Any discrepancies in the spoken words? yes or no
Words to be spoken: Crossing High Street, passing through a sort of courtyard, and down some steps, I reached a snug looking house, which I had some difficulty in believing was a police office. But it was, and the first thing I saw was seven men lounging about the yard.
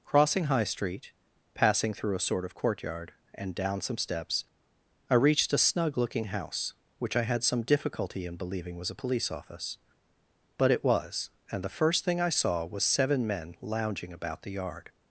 no